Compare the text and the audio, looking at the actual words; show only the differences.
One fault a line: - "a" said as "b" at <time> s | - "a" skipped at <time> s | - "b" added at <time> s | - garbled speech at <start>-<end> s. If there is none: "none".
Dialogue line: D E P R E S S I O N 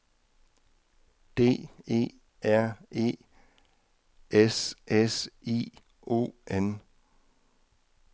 - "P" skipped at 2.0 s